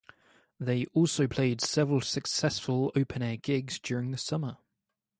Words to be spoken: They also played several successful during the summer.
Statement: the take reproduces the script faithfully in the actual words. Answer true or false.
false